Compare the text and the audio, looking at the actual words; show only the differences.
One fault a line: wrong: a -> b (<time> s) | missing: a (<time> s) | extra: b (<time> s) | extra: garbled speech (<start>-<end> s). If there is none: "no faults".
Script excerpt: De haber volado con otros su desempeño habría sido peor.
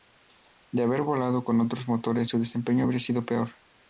extra: motores (1.9 s)